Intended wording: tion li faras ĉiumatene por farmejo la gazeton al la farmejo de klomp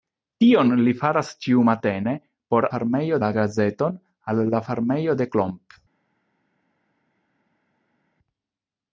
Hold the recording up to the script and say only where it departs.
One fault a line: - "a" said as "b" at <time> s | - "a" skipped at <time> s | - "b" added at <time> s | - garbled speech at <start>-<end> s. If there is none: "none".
none